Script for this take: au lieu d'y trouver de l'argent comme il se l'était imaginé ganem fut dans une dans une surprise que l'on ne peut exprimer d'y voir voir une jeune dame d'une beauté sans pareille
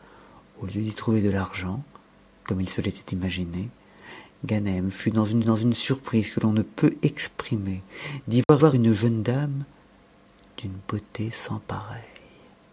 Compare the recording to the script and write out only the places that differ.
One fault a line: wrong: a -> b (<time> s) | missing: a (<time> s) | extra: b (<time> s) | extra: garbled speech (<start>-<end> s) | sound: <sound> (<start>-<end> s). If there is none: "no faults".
sound: dropout (8.4-8.5 s)